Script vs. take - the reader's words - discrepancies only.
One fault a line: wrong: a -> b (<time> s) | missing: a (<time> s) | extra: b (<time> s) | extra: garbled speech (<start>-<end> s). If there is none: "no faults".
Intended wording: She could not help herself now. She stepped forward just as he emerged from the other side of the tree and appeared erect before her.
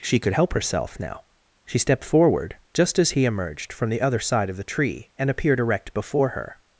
missing: not (0.3 s)